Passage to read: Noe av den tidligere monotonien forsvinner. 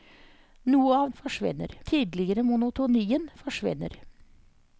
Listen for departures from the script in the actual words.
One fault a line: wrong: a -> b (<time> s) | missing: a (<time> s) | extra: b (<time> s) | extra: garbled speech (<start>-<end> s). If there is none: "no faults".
wrong: den -> forsvinner (1.2 s)